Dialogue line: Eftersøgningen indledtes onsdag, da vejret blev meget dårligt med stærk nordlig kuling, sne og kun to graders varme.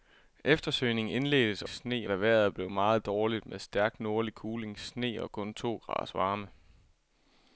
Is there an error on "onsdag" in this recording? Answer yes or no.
yes